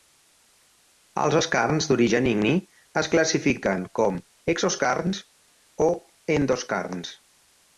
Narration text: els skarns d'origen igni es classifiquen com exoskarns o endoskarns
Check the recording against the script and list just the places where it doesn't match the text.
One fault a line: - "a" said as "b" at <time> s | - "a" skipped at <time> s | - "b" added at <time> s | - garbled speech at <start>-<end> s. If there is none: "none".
none